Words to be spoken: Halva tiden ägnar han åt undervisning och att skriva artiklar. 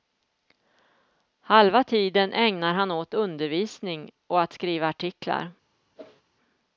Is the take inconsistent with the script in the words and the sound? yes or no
yes